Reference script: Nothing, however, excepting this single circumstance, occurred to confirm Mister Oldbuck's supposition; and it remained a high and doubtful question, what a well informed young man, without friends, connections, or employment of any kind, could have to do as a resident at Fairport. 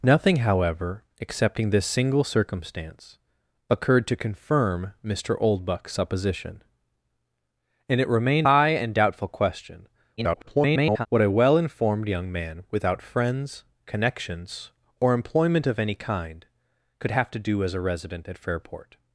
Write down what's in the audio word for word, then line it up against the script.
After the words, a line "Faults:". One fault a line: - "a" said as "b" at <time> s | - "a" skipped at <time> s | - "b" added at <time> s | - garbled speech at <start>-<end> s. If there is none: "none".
Nothing, however, excepting this single circumstance, occurred to confirm Mister Oldbuck's supposition; and it remained high and doubtful question, [garbled] what a well informed young man, without friends, connections, or employment of any kind, could have to do as a resident at Fairport.
Faults:
- "a" skipped at 8.5 s
- garbled speech at 10.2-11.1 s